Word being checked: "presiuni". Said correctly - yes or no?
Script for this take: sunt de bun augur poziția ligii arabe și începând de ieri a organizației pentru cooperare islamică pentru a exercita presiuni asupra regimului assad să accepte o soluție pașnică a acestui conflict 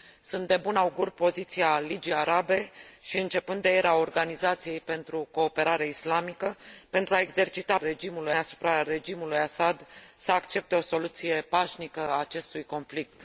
no